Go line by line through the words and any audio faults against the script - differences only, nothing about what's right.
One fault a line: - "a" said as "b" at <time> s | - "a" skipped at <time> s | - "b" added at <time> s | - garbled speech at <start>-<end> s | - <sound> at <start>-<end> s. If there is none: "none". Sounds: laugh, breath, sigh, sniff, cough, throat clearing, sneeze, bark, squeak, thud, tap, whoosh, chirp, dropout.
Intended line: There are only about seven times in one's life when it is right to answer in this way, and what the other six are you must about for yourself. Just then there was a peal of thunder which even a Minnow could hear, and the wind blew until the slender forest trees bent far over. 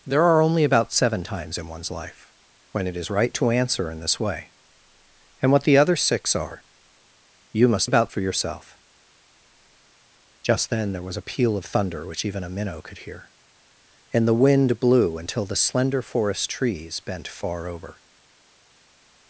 none